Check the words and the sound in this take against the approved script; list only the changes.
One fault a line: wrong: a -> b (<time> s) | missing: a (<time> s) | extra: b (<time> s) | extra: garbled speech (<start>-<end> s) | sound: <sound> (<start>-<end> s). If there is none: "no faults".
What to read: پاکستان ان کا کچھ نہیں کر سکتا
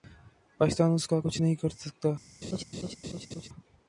wrong: ان -> اس (0.9 s)
sound: laugh (2.4-3.5 s)